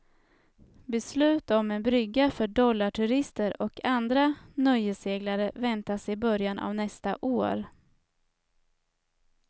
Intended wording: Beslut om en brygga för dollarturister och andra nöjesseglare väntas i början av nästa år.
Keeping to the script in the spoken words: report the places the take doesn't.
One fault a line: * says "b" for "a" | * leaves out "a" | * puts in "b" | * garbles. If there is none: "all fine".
all fine